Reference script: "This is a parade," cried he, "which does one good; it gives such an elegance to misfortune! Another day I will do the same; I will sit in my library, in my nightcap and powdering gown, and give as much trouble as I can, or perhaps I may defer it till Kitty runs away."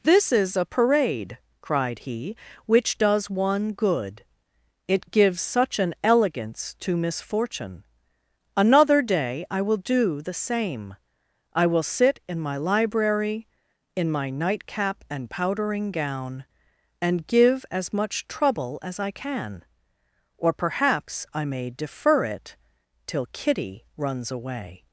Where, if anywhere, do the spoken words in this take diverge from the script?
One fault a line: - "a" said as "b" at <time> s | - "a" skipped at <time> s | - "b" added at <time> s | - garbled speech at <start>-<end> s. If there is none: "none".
none